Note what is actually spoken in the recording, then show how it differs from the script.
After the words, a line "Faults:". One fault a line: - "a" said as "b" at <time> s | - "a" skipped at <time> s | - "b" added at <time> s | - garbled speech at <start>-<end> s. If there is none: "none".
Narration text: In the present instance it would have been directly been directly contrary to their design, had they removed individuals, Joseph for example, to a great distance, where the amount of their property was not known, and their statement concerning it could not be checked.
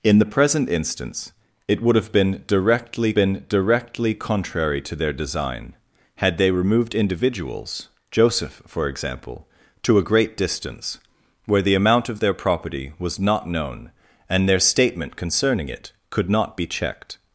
In the present instance it would have been directly been directly contrary to their design, had they removed individuals, Joseph for example, to a great distance, where the amount of their property was not known, and their statement concerning it could not be checked.
Faults:
none